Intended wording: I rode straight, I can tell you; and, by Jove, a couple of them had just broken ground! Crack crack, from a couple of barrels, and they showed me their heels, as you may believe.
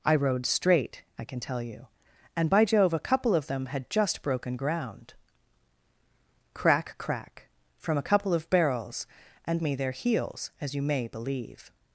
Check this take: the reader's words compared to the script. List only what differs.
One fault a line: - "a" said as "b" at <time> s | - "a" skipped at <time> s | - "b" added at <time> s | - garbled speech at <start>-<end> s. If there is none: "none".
- "they showed" skipped at 9.6 s